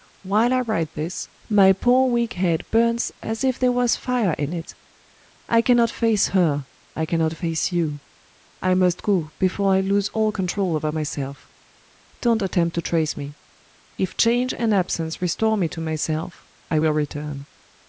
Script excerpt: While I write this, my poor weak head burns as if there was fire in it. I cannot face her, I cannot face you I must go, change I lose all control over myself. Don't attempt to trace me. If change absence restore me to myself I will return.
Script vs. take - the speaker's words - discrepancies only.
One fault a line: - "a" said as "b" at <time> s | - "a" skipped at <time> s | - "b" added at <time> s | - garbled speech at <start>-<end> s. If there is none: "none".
- "change" said as "before" at 9.4 s
- "and" added at 14.6 s